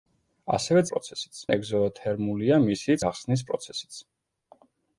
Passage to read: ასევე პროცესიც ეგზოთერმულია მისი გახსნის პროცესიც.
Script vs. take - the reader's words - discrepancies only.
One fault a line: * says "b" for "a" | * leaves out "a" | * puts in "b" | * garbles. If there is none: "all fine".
all fine